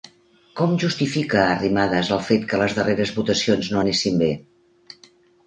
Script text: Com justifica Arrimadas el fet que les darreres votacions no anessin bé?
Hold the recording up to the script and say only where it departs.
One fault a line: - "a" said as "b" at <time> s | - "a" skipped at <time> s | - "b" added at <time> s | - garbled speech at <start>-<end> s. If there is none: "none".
none